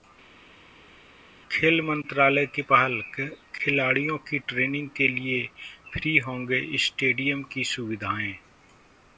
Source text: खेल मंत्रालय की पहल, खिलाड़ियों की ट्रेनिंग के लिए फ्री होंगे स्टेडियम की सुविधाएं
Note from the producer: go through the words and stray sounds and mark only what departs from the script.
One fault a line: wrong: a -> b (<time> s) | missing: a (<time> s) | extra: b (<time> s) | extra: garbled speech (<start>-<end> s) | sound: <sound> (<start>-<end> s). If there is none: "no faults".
no faults